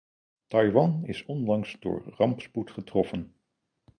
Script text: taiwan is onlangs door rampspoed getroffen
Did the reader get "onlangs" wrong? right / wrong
right